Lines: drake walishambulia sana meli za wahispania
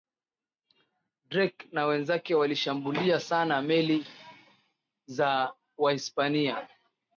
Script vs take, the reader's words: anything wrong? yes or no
yes